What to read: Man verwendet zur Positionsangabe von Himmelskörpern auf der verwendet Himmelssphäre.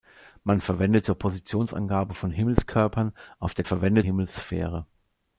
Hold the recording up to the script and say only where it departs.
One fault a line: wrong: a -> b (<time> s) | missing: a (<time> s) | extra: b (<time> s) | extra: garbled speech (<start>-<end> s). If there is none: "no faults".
no faults